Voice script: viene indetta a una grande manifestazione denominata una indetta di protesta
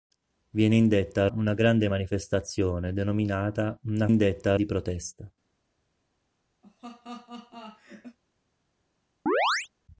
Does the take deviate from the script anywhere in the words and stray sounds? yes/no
yes